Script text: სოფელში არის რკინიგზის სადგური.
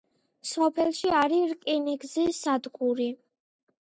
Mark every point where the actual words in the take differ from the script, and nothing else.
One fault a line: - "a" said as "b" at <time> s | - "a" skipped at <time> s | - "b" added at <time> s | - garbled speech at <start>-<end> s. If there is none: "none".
none